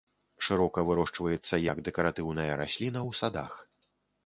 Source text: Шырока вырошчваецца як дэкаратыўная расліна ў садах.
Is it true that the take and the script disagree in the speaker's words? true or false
false